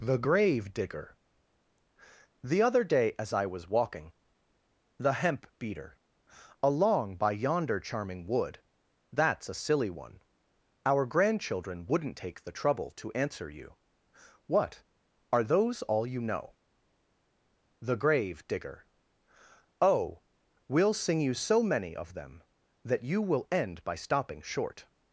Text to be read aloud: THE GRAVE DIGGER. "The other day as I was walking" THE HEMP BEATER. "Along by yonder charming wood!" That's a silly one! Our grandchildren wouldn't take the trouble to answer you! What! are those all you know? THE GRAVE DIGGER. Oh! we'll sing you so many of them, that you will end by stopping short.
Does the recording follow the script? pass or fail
pass